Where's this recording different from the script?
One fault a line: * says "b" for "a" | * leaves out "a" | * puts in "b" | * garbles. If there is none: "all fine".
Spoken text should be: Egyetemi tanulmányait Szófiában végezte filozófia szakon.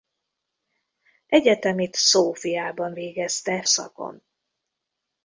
* leaves out "tanulmányait"
* leaves out "filozófia"